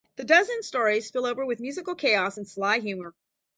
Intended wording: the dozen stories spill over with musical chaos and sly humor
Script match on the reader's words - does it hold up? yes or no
yes